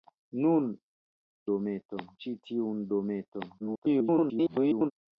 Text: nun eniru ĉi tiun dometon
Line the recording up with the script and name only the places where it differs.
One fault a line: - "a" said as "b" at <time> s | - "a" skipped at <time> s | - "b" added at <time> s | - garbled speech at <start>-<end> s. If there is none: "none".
- "eniru" said as "dometon" at 1.5 s
- garbled speech at 3.6-4.9 s